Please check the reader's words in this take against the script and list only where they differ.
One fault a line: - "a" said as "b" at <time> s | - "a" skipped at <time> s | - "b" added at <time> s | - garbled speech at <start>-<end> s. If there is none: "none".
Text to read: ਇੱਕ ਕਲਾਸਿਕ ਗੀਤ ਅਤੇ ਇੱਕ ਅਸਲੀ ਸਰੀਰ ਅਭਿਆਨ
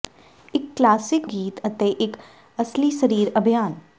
none